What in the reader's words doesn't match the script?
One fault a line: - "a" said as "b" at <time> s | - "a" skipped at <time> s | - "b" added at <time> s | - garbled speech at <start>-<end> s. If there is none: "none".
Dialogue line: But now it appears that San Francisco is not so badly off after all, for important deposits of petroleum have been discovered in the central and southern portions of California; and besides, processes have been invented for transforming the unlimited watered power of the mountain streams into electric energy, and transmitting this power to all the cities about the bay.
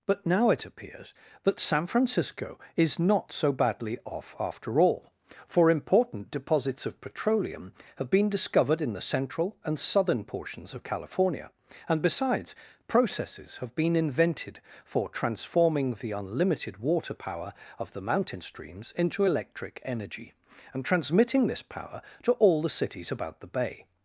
- "watered" said as "water" at 16.8 s